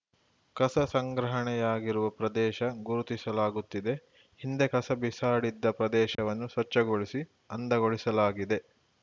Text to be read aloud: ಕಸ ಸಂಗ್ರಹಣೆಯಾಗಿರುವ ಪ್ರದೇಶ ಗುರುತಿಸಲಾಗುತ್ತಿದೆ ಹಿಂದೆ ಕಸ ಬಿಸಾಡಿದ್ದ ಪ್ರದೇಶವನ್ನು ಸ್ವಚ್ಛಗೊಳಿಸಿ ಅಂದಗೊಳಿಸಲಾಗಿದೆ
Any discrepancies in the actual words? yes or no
no